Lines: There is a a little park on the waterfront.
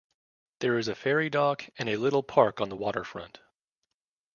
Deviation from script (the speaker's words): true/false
true